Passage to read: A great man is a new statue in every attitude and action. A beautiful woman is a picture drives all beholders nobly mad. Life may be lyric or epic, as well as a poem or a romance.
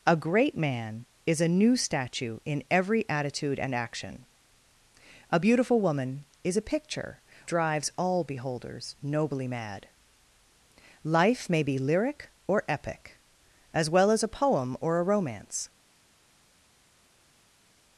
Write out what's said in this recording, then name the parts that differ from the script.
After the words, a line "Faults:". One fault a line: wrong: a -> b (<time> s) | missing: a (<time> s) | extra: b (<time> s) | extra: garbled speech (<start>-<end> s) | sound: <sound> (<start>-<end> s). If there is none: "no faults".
A great man is a new statue in every attitude and action. A beautiful woman is a picture drives all beholders nobly mad. Life may be lyric or epic, as well as a poem or a romance.
Faults:
no faults